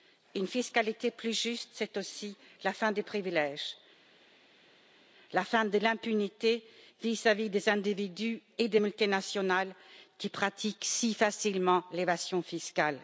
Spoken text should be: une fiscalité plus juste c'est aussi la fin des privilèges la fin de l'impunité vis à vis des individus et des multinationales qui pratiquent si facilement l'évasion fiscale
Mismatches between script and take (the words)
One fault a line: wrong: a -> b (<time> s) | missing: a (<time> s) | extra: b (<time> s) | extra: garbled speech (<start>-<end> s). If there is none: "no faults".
no faults